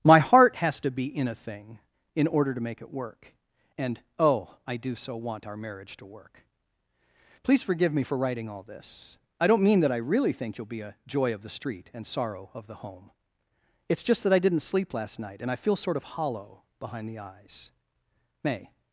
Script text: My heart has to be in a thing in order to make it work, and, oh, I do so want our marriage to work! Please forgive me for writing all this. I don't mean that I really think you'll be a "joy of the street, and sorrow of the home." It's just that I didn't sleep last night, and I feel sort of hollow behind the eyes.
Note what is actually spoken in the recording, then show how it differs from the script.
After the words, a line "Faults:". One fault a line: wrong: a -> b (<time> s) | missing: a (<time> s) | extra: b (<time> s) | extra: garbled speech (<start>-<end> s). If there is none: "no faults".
My heart has to be in a thing in order to make it work, and, oh, I do so want our marriage to work! Please forgive me for writing all this. I don't mean that I really think you'll be a "joy of the street, and sorrow of the home." It's just that I didn't sleep last night, and I feel sort of hollow behind the eyes. May
Faults:
extra: May (18.4 s)